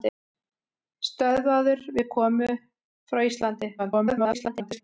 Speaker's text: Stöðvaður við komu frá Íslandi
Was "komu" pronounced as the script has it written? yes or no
yes